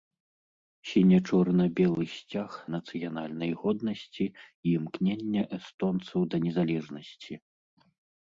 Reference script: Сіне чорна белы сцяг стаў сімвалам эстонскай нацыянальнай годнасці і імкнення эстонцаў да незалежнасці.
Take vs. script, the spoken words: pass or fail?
fail